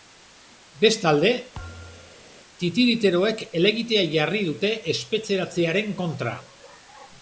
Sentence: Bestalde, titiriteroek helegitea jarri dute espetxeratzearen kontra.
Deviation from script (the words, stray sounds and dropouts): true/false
true